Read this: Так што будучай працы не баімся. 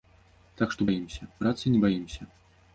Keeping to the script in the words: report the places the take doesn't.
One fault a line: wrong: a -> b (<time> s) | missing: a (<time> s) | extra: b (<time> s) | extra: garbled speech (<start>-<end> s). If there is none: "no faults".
wrong: будучай -> баімся (0.9 s)